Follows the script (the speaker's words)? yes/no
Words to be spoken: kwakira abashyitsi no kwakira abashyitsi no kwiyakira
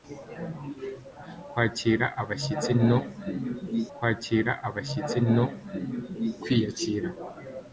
yes